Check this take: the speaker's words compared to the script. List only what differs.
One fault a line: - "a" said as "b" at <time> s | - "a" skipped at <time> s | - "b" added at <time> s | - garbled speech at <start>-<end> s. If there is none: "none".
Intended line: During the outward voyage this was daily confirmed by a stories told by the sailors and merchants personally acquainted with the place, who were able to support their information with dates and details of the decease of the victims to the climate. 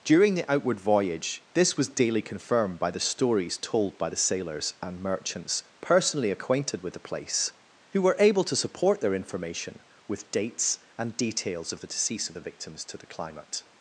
- "a" said as "the" at 2.9 s